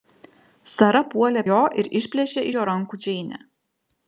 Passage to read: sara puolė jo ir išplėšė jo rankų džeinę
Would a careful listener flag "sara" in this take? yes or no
no